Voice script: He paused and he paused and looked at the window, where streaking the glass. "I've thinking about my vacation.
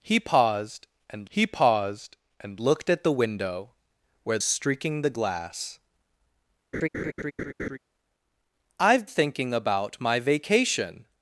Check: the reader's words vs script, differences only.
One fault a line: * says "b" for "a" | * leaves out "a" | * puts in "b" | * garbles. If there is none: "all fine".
all fine